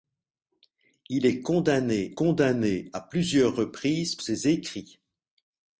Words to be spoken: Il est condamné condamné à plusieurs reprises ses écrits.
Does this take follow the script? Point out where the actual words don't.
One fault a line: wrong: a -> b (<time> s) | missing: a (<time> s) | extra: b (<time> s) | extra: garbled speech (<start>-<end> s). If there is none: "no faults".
no faults